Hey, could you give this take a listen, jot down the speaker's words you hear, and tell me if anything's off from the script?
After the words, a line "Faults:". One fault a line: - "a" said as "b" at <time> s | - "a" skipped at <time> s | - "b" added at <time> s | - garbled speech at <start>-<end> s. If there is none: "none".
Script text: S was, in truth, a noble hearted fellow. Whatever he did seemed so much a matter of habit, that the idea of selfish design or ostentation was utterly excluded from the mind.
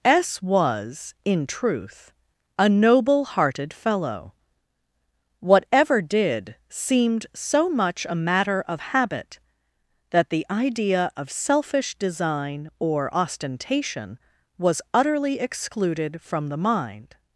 S was, in truth, a noble hearted fellow. Whatever did seemed so much a matter of habit, that the idea of selfish design or ostentation was utterly excluded from the mind.
Faults:
- "he" skipped at 6.0 s